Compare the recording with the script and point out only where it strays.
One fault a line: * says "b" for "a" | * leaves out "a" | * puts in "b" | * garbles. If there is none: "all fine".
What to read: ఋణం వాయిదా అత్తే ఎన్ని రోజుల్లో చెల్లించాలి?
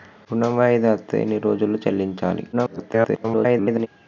* garbles